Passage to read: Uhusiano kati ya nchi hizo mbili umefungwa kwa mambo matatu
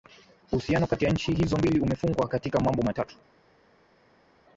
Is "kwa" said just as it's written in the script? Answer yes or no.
no